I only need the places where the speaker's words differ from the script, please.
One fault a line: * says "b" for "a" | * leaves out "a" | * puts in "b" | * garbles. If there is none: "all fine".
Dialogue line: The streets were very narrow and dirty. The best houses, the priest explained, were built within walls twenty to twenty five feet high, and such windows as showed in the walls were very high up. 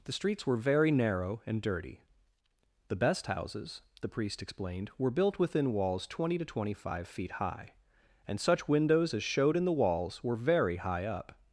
all fine